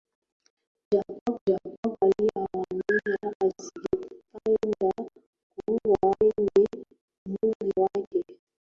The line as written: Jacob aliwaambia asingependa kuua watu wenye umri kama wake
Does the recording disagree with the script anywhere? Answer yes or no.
yes